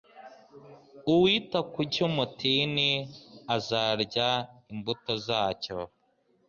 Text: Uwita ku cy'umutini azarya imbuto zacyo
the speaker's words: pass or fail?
pass